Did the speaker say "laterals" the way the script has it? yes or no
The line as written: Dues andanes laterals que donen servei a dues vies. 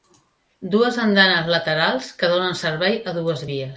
yes